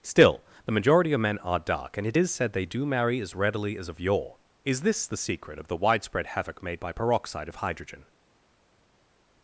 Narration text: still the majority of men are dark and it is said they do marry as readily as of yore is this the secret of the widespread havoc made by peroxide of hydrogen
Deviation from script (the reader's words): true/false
false